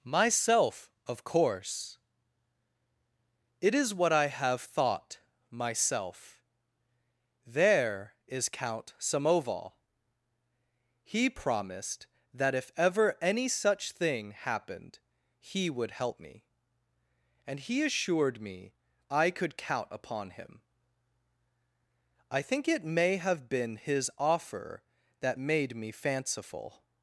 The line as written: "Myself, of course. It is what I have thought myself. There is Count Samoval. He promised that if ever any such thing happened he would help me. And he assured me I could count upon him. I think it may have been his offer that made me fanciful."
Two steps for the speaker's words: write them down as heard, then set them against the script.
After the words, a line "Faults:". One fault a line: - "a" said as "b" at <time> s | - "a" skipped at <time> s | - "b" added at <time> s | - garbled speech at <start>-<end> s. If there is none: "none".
"Myself, of course. It is what I have thought myself. There is Count Samoval. He promised that if ever any such thing happened he would help me. And he assured me I could count upon him. I think it may have been his offer that made me fanciful."
Faults:
none